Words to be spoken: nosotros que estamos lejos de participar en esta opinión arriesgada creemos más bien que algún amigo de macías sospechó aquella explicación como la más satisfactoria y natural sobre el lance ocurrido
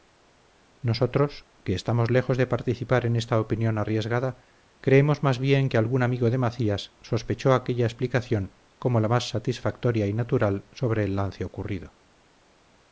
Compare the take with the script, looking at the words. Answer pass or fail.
pass